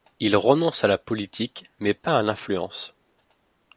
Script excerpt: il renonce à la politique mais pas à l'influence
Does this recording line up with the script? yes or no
yes